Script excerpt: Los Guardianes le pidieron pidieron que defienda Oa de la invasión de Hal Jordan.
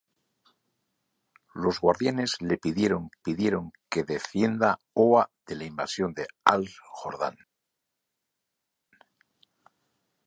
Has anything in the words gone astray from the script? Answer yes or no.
no